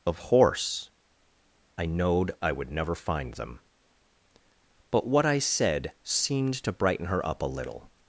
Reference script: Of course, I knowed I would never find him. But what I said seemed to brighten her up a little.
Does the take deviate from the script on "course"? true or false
true